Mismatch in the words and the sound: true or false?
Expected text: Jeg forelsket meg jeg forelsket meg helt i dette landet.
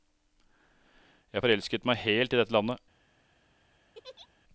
true